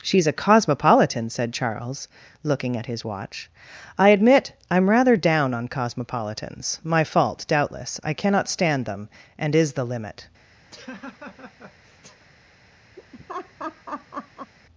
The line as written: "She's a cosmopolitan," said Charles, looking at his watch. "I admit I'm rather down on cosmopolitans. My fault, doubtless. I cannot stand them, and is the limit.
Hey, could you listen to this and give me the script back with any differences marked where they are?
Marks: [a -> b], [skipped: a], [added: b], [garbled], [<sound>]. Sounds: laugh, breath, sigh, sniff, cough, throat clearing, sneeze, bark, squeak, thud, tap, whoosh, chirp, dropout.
"She's a cosmopolitan," said Charles, looking at his watch. "I admit I'm rather down on cosmopolitans. My fault, doubtless. I cannot stand them, and is the limit. [laugh] [laugh]